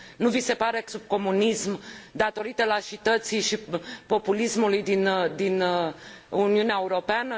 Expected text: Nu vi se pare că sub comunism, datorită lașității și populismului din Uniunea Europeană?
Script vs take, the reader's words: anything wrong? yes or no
no